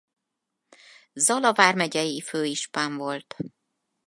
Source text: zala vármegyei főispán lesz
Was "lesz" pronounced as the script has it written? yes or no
no